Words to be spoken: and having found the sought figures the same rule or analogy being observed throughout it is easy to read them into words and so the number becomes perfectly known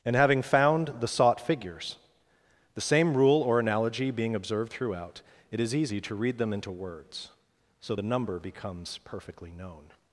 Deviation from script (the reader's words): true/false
true